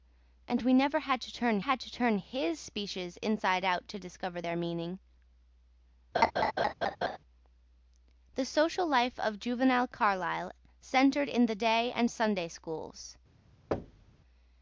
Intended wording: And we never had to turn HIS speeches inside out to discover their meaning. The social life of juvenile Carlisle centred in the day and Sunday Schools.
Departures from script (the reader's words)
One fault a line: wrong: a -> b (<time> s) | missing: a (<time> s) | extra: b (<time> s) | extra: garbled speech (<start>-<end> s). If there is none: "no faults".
extra: had to turn (1.6 s)